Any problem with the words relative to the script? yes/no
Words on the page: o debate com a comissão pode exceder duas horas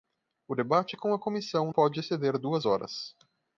no